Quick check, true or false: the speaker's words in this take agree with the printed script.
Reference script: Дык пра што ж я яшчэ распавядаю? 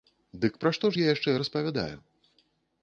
true